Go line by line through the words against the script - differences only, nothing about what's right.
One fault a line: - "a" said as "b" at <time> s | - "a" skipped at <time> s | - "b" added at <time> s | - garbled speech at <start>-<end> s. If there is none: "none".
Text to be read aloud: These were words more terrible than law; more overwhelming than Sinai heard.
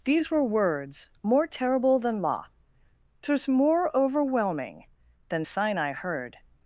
- "twas" added at 3.2 s